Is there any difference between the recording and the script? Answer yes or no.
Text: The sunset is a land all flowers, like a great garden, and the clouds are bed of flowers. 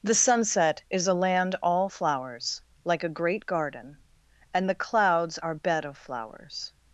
no